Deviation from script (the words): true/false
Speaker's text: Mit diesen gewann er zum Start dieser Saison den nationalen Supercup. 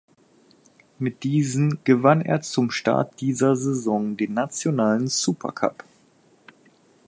false